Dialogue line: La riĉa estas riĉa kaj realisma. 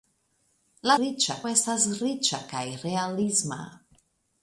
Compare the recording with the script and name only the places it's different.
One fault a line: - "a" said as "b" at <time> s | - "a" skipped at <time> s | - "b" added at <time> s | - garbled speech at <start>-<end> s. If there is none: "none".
none